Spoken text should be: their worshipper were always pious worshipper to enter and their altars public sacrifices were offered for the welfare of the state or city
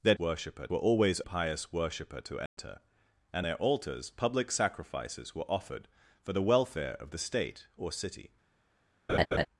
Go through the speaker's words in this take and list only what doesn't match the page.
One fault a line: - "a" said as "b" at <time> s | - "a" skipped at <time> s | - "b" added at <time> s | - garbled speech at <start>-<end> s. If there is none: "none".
none